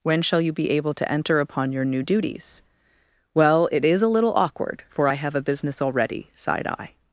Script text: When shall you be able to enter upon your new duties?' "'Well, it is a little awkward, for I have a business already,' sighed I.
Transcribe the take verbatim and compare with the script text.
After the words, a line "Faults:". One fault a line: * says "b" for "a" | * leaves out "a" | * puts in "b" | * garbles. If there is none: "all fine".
When shall you be able to enter upon your new duties?' "'Well, it is a little awkward, for I have a business already,' sighed I.
Faults:
all fine